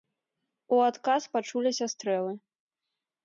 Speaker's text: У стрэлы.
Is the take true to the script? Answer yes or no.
no